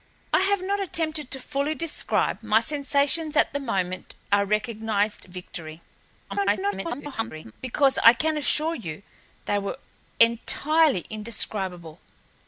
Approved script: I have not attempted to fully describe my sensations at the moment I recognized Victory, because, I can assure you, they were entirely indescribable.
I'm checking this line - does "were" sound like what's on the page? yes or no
yes